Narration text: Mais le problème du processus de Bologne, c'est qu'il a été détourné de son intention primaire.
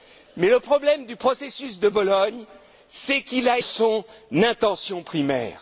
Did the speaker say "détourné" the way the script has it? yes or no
no